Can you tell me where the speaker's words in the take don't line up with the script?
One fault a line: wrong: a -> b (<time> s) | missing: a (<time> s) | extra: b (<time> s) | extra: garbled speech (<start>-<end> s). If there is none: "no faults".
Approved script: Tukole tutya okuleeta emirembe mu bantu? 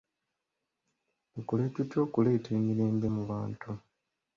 no faults